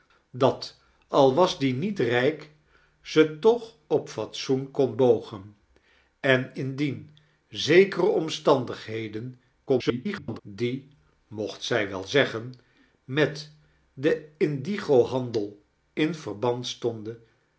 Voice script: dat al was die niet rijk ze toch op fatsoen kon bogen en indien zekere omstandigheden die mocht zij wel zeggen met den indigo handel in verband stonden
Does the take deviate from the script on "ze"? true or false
false